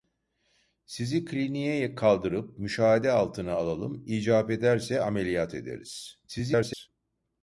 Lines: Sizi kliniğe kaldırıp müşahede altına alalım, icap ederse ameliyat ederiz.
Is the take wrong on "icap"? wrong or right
right